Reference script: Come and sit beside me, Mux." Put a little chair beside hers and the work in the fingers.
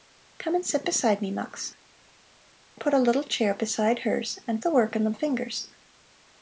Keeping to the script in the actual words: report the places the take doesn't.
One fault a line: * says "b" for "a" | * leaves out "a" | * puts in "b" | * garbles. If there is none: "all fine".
all fine